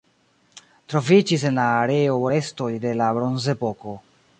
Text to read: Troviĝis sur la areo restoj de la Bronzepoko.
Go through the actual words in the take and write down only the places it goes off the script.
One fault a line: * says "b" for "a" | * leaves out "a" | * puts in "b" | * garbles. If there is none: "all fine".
* says "en" for "sur"